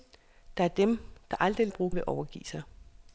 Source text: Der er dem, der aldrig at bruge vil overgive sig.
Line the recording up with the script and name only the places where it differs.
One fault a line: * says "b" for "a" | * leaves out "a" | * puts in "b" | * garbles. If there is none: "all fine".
all fine